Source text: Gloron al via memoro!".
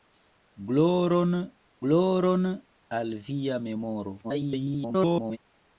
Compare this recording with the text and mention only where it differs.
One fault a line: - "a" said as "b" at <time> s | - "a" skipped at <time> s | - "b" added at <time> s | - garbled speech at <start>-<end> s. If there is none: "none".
- "gloron" added at 1.9 s
- garbled speech at 4.2-5.4 s